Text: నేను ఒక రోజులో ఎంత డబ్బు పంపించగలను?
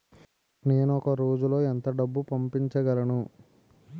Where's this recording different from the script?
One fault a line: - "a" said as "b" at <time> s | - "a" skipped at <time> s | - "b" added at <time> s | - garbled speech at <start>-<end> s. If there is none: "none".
none